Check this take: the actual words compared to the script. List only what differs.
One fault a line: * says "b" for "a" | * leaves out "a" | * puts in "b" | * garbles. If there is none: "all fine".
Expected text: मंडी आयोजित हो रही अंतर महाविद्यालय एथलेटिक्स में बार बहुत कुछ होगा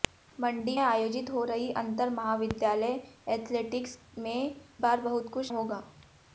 all fine